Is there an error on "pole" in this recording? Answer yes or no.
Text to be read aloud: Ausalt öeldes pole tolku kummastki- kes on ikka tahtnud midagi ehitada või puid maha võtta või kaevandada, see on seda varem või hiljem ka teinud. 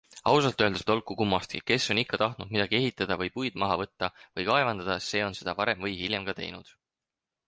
yes